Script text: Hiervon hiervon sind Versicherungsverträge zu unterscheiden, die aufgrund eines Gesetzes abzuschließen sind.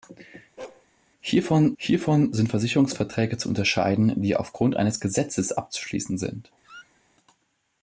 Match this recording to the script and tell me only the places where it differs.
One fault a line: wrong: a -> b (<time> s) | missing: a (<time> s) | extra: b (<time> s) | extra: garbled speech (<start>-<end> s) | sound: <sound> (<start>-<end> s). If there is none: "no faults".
sound: bark (0.6-0.9 s)
sound: squeak (6.6-7.0 s)